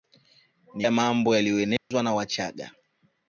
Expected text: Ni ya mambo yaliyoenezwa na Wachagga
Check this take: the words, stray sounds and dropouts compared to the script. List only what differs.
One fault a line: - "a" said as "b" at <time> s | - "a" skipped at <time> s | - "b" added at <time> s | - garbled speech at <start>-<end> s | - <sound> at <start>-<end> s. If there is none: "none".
- dropout at 1.8-1.9 s